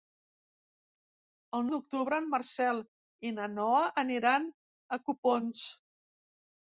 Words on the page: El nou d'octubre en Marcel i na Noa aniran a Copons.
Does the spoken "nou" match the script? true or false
false